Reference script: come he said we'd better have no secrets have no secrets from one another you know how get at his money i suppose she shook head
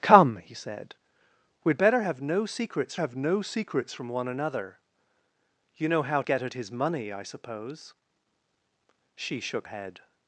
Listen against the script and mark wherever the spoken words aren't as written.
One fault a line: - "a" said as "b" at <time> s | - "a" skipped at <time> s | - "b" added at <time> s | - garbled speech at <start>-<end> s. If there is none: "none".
none